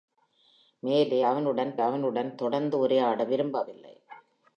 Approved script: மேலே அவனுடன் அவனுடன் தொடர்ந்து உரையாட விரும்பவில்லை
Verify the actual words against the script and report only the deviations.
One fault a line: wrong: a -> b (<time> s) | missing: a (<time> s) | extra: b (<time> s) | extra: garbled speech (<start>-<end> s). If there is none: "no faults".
no faults